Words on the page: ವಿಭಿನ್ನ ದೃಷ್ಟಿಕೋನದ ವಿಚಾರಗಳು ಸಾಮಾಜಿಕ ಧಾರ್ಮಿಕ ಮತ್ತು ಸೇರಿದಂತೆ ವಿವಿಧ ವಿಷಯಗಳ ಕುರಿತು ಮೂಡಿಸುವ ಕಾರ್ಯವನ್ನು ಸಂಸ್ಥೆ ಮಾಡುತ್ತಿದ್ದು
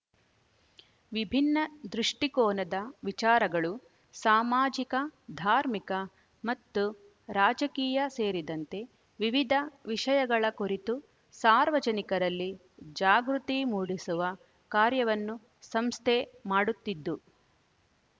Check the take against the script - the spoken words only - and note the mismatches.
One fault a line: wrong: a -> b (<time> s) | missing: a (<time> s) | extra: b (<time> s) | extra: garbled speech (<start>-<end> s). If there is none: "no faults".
extra: ರಾಜಕೀಯ (7.3 s)
extra: ಸಾರ್ವಜನಿಕರಲ್ಲಿ ಜಾಗೃತಿ (11.3 s)